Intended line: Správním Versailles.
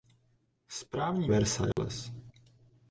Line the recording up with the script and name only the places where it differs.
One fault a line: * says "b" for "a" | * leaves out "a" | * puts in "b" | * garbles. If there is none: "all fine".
all fine